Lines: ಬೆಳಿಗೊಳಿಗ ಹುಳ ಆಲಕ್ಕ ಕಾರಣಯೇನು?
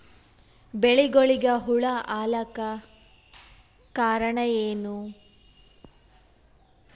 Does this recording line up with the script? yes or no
yes